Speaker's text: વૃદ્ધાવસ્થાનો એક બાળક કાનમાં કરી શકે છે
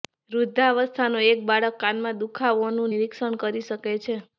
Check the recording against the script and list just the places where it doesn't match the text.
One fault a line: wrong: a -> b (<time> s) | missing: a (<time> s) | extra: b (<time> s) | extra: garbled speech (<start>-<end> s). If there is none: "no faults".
extra: દુખાવોનું નિરીક્ષણ (2.2 s)